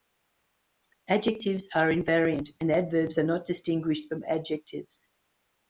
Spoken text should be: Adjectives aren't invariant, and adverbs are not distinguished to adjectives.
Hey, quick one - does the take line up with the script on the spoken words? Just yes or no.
no